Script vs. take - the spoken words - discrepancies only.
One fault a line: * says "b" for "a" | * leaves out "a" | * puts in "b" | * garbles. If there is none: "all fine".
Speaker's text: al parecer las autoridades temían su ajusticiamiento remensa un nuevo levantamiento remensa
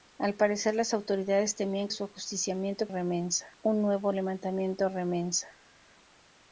all fine